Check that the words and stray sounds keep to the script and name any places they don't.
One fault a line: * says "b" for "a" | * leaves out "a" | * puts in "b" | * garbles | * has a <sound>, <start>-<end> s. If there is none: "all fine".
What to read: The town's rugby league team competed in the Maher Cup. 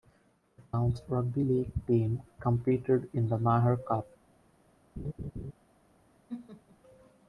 * has a laugh, 5.0-5.5 s
* has a laugh, 6.3-6.8 s